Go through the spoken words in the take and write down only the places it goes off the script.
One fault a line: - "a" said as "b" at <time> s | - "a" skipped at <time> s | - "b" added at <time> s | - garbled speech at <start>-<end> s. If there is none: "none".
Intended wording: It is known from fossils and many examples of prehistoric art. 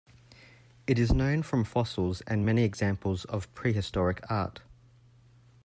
none